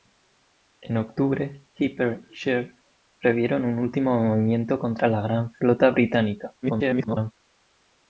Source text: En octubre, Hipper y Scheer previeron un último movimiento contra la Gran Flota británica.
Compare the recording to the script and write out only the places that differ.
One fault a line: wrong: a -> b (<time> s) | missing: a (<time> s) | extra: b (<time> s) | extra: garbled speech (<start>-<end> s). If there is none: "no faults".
extra: garbled speech (6.6-7.3 s)